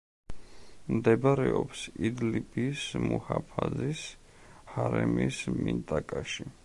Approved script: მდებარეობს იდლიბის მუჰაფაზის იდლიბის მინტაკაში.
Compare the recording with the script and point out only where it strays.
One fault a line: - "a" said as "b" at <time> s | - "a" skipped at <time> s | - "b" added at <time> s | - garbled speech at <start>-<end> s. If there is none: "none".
- "იდლიბის" said as "ჰარემის" at 4.7 s